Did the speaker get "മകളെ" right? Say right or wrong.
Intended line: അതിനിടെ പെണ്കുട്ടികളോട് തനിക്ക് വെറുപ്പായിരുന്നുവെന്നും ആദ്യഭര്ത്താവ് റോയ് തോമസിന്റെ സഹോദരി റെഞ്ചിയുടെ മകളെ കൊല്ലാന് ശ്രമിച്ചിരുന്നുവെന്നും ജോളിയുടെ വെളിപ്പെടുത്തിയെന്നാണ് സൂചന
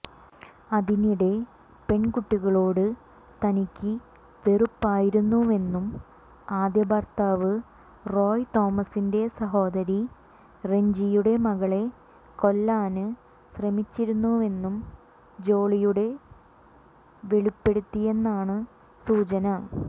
right